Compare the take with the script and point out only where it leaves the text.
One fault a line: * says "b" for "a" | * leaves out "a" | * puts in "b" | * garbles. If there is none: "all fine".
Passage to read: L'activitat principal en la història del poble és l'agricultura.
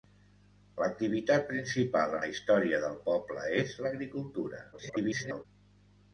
* leaves out "en"
* garbles